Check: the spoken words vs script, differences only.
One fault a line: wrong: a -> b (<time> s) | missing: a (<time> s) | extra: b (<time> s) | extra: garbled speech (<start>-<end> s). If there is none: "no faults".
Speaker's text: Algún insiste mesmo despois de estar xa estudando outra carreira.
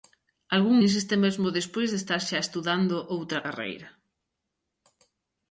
no faults